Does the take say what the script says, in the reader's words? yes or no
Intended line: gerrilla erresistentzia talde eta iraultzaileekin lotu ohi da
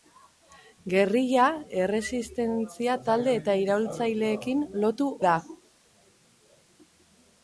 no